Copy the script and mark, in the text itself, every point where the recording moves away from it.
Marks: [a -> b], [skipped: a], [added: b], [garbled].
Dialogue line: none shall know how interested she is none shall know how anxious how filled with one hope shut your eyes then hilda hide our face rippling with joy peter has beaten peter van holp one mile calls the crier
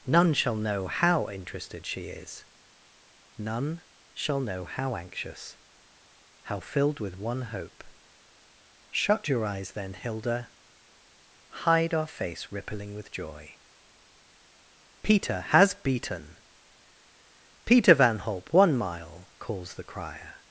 none shall know how interested she is none shall know how anxious how filled with one hope shut your eyes then hilda hide our face rippling with joy peter has beaten peter van holp one mile calls the crier